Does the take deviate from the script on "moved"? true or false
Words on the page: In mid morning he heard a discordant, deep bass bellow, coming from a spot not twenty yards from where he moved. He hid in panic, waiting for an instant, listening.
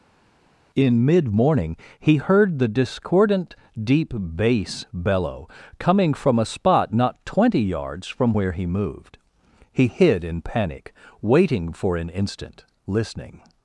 false